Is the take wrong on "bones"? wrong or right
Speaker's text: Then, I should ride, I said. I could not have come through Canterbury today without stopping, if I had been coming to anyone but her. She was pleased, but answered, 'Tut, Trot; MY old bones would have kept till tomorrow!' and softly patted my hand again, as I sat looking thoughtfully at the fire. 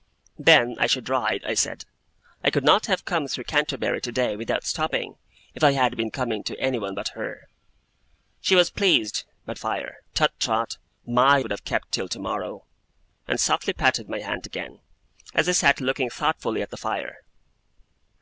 wrong